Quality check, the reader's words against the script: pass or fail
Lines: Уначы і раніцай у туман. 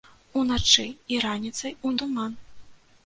pass